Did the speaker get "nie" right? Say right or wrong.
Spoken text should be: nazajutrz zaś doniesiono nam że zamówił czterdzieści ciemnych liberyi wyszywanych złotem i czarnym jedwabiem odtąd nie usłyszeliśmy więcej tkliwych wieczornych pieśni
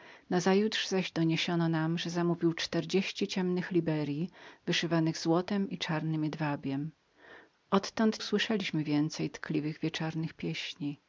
wrong